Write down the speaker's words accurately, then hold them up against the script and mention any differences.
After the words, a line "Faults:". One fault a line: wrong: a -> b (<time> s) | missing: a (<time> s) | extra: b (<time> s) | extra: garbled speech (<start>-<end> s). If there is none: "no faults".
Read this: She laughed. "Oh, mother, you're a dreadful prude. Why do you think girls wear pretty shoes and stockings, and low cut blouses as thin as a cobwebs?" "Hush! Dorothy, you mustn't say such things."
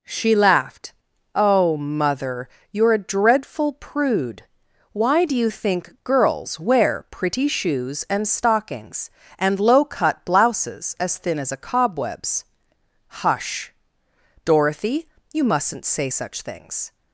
She laughed. "Oh, mother, you're a dreadful prude. Why do you think girls wear pretty shoes and stockings, and low cut blouses as thin as a cobwebs?" "Hush! Dorothy, you mustn't say such things."
Faults:
no faults